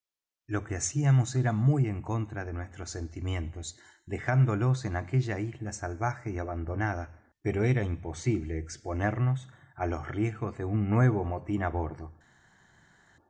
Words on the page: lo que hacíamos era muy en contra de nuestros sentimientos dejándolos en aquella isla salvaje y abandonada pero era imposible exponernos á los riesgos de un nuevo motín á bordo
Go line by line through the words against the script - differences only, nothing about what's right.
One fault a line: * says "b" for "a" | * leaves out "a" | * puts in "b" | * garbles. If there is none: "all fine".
all fine